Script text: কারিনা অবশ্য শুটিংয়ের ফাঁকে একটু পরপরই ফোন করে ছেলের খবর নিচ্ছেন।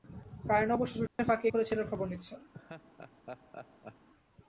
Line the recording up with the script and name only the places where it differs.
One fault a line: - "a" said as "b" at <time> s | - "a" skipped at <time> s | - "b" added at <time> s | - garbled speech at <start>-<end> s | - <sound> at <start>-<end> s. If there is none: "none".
- dropout at 1.1-1.2 s
- "একটু পরপরই ফোন" skipped at 1.5 s
- laugh at 2.5-4.1 s